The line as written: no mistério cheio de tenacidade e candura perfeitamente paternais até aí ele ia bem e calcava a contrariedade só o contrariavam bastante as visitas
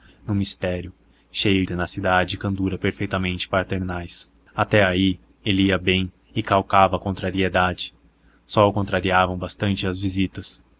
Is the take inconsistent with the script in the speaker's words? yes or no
yes